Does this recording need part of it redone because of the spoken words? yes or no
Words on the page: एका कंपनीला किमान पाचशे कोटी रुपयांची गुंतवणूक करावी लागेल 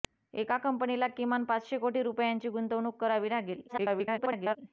yes